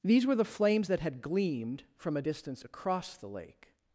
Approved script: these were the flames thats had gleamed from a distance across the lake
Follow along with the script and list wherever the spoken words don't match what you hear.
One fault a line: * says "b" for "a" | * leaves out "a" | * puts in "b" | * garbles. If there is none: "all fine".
* says "that" for "thats"